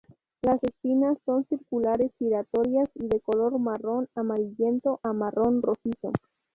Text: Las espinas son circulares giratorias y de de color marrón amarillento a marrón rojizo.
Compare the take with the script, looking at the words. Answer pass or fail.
fail